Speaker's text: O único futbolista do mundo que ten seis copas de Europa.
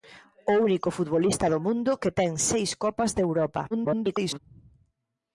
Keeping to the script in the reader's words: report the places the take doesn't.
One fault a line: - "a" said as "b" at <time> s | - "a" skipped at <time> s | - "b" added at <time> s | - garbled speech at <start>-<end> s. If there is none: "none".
- garbled speech at 3.7-4.4 s